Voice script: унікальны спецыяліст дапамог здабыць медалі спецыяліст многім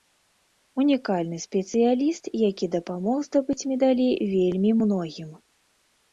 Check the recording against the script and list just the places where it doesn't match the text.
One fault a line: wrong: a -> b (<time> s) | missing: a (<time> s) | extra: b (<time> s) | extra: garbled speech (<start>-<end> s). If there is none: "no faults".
extra: які (2.5 s)
wrong: спецыяліст -> вельмі (4.3 s)